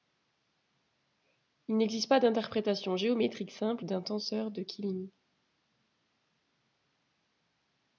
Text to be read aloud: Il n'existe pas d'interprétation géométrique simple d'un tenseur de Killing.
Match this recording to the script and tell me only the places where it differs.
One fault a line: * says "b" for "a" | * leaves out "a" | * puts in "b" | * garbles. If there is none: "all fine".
all fine